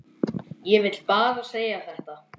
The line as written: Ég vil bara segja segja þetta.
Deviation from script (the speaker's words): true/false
true